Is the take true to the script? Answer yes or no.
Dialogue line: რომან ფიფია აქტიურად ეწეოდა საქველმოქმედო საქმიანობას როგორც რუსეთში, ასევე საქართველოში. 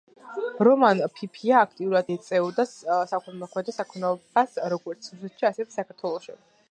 yes